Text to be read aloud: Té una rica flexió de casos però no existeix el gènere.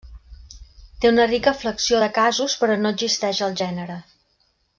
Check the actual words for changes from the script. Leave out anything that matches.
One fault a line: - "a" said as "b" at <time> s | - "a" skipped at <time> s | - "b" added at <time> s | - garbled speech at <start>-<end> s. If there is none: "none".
none